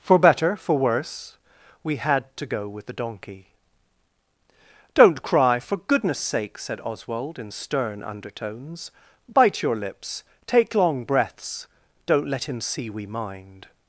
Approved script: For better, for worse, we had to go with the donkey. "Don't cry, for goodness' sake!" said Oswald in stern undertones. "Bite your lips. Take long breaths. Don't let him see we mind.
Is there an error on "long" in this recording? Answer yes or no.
no